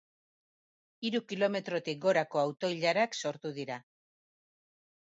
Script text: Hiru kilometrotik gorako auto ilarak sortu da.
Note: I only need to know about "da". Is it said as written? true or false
false